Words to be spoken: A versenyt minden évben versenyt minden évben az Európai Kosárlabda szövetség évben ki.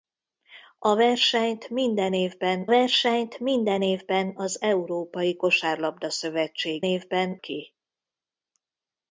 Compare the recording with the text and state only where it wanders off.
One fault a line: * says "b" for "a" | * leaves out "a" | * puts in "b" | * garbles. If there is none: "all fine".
all fine